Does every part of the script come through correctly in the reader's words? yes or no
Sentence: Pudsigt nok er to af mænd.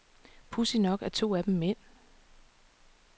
no